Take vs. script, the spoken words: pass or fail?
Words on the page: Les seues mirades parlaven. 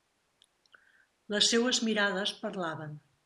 pass